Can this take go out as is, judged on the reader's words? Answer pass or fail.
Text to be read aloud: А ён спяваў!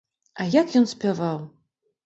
fail